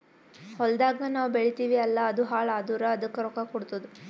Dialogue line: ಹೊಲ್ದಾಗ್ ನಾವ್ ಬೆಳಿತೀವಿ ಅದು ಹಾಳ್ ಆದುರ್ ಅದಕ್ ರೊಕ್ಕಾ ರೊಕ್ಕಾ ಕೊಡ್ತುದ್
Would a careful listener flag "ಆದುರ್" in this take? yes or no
no